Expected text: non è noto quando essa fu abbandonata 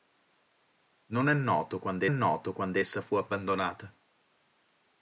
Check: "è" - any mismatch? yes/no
no